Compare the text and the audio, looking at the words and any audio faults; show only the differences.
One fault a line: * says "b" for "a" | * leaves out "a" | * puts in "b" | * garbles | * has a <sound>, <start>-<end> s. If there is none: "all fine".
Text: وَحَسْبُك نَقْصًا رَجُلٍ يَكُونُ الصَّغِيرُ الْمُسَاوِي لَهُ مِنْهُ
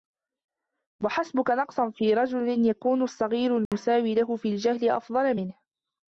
* puts in "فِي"
* has a dropout, 3.7-3.7 s
* puts in "فِي الْجَهْلِ أَفْضَلَ"